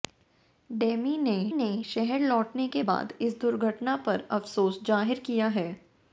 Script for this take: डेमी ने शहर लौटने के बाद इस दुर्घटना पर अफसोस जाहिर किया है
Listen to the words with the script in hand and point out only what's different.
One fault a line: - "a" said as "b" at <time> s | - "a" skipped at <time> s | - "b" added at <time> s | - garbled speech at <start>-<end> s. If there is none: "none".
- "ने" added at 1.5 s